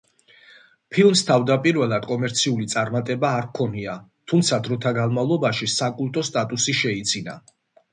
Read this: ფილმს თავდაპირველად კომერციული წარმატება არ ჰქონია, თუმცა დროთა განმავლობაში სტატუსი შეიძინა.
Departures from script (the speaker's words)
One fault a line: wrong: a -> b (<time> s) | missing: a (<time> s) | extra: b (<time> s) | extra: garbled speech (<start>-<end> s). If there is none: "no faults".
extra: საკულტო (5.8 s)